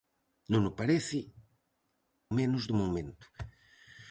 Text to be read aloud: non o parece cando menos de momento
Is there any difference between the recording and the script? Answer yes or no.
yes